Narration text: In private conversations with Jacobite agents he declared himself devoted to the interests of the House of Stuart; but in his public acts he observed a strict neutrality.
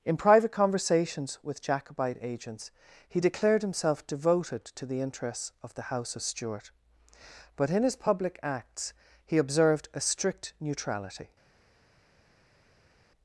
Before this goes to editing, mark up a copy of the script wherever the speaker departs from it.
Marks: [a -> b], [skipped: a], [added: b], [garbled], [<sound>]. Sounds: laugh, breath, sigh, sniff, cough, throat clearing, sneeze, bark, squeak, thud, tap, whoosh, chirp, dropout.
In private conversations with Jacobite agents he declared himself devoted to the interests of the House of Stuart; but in his public acts he observed a strict neutrality.